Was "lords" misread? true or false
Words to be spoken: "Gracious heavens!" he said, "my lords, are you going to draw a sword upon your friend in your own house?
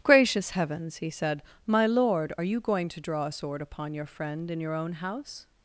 true